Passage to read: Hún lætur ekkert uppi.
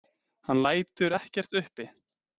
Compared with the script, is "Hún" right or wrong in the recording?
wrong